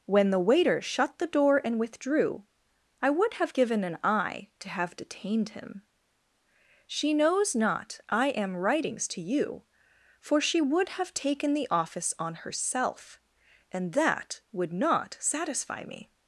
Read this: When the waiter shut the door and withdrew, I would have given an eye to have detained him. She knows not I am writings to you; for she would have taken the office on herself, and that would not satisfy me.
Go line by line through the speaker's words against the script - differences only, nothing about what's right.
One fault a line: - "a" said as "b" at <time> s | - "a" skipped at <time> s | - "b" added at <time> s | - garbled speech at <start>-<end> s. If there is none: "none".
none